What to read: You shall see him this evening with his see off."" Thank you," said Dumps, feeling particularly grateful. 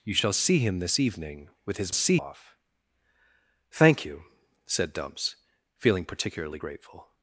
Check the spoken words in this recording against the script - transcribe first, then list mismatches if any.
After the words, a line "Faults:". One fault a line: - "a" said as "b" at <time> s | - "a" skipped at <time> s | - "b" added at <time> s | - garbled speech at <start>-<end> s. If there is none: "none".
You shall see him this evening with his see off."" Thank you," said Dumps, feeling particularly grateful.
Faults:
none